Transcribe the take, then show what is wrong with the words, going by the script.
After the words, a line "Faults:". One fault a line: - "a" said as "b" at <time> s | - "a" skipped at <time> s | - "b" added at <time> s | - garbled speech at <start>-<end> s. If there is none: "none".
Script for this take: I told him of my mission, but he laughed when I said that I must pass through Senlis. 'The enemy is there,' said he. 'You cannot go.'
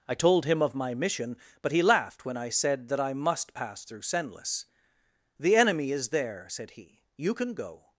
I told him of my mission, but he laughed when I said that I must pass through Senlis. 'The enemy is there,' said he. 'You can go.'
Faults:
- "cannot" said as "can" at 7.3 s